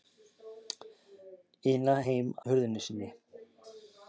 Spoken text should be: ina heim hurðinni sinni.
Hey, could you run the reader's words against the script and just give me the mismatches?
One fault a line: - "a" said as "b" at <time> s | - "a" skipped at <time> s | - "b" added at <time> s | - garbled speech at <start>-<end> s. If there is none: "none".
none